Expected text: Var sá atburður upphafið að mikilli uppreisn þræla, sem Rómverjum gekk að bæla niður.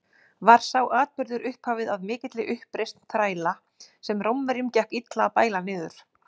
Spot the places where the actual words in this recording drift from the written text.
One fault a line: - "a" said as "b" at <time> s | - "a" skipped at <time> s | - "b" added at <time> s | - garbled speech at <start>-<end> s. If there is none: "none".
- "illa" added at 5.0 s